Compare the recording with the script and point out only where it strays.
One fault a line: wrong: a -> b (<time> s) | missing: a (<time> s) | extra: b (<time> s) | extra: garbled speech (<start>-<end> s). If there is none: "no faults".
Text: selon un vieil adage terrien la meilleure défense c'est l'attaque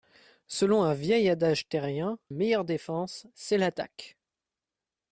missing: la (2.2 s)